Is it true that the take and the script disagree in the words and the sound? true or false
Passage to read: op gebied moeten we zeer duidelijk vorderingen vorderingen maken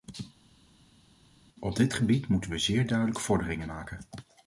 true